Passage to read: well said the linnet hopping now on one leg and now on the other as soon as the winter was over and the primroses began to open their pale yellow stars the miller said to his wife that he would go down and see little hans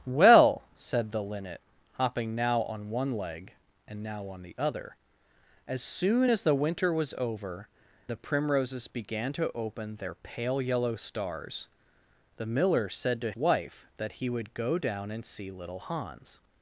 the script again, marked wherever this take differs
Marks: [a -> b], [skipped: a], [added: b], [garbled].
well said the linnet hopping now on one leg and now on the other as soon as the winter was over [skipped: and] the primroses began to open their pale yellow stars the miller said to [skipped: his] wife that he would go down and see little hans